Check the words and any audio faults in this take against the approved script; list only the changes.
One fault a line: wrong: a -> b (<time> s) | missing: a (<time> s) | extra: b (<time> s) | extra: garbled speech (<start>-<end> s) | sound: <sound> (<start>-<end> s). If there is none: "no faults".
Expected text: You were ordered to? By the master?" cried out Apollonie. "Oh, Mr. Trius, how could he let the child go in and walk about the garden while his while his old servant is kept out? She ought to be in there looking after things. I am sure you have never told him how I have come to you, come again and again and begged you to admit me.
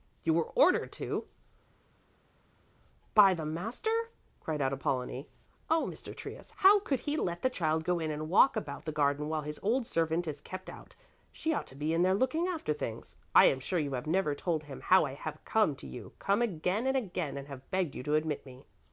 missing: while his (9.6 s)
extra: have (17.5 s)